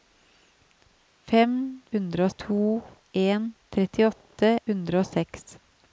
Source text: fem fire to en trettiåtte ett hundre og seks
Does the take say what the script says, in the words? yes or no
no